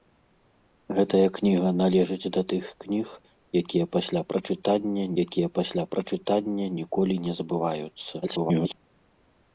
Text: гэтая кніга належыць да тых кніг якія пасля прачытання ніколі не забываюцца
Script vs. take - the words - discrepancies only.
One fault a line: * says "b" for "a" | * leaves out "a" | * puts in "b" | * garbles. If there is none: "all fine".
* puts in "якія пасля прачытання"
* garbles